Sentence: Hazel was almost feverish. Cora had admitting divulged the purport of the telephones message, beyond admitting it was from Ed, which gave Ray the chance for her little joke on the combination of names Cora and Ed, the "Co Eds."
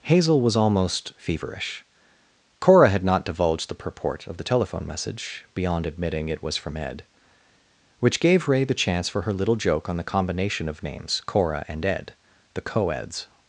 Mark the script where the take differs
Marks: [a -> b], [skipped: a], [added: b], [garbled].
Hazel was almost feverish. Cora had [admitting -> not] divulged the purport of the [telephones -> telephone] message, beyond admitting it was from Ed, which gave Ray the chance for her little joke on the combination of names Cora and Ed, the "Co Eds."